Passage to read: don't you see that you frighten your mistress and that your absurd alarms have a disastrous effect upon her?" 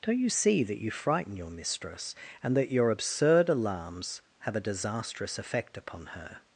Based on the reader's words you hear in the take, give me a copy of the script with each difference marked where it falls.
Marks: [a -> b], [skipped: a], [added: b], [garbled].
don't you see that you frighten your mistress and that your absurd alarms have a disastrous effect upon her?"